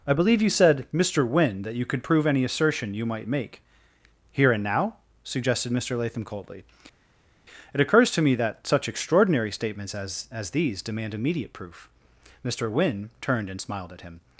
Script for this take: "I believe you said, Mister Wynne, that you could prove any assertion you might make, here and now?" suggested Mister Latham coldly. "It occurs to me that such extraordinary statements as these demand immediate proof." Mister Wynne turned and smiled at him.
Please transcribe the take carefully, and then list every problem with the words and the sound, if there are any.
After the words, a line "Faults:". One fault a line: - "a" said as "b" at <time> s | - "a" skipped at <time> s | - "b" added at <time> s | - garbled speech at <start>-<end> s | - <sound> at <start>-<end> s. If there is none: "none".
"I believe you said, Mister Wynne, that you could prove any assertion you might make, here and now?" suggested Mister Latham coldly. "It occurs to me that such extraordinary statements as as these demand immediate proof." Mister Wynne turned and smiled at him.
Faults:
- "as" added at 10.3 s